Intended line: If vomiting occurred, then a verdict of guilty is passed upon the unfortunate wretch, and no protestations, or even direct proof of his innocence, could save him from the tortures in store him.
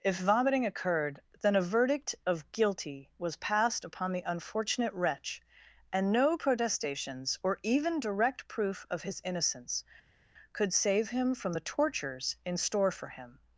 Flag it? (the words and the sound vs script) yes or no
yes